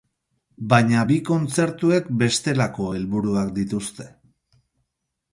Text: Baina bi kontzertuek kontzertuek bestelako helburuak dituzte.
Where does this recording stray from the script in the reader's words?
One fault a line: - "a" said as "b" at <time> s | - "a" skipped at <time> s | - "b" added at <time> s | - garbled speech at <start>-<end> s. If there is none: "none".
- "kontzertuek" skipped at 2.1 s